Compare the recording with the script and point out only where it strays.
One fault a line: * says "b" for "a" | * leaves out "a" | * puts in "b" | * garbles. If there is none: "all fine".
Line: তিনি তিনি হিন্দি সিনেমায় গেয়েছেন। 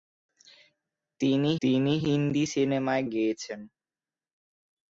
all fine